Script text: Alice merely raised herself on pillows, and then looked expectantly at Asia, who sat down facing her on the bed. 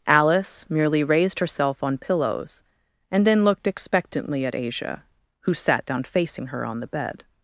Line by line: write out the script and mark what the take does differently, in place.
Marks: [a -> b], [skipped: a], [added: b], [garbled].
Alice merely raised herself on pillows, and then looked expectantly at Asia, who sat down facing her on the bed.